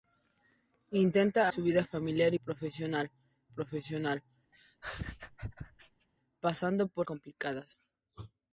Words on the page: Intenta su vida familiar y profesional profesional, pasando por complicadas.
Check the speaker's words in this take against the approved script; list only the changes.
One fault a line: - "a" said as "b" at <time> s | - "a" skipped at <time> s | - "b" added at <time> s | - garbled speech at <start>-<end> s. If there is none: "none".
none